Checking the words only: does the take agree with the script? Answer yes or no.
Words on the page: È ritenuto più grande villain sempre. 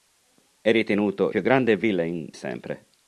yes